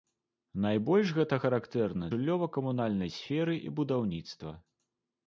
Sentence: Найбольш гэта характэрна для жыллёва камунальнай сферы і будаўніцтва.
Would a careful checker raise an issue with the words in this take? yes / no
yes